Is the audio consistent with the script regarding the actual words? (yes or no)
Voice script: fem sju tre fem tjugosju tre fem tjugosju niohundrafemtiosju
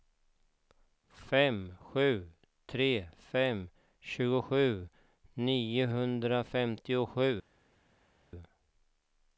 no